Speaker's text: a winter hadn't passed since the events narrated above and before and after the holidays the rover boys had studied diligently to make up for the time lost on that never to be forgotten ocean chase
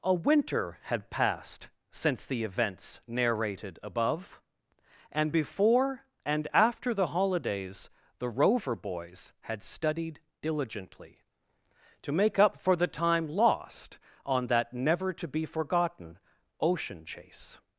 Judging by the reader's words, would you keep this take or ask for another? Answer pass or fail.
fail